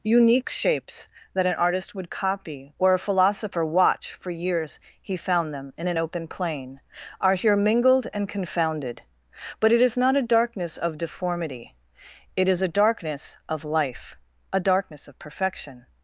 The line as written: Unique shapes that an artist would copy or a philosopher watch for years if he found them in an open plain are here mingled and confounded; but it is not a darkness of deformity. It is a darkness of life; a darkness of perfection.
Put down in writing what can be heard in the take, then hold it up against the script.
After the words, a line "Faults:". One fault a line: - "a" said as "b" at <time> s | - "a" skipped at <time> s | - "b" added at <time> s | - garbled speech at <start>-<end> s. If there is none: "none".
Unique shapes that an artist would copy or a philosopher watch for years he found them in an open plain are here mingled and confounded; but it is not a darkness of deformity. It is a darkness of life; a darkness of perfection.
Faults:
- "if" skipped at 4.8 s